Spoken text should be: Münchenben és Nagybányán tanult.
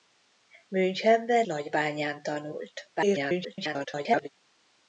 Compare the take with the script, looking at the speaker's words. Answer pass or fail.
fail